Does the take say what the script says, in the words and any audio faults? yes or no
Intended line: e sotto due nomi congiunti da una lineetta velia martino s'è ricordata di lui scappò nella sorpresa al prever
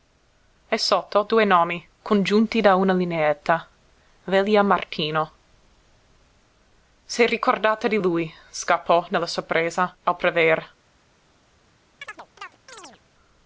no